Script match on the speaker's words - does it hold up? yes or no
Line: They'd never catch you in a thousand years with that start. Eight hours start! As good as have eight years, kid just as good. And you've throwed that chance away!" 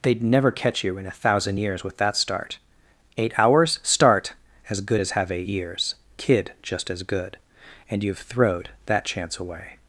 yes